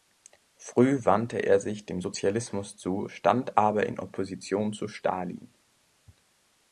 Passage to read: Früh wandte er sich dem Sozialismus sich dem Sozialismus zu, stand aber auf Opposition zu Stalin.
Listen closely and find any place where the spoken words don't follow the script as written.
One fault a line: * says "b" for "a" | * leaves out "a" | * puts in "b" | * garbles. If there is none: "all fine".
* leaves out "sich dem Sozialismus"
* says "in" for "auf"